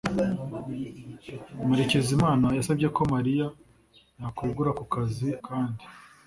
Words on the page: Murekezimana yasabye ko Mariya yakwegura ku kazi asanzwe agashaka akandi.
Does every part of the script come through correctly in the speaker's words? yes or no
no